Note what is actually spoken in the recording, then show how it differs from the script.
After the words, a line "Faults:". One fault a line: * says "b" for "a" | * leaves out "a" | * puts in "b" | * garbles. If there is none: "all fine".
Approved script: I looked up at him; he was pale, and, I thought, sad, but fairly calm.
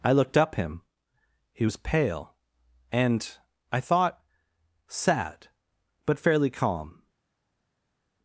I looked up him; he was pale, and, I thought, sad, but fairly calm.
Faults:
* leaves out "at"